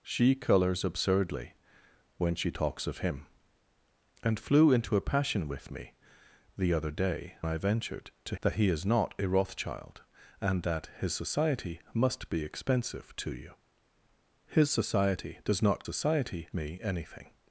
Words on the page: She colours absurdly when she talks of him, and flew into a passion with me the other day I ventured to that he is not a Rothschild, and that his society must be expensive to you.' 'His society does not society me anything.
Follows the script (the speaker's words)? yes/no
yes